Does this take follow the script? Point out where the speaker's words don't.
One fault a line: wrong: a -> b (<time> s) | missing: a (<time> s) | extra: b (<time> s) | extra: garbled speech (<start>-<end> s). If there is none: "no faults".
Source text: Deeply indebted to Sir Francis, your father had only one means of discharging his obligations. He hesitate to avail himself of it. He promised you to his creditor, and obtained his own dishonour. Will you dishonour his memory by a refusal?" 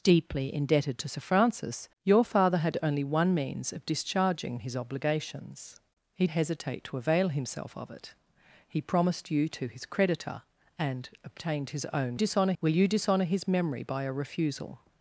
no faults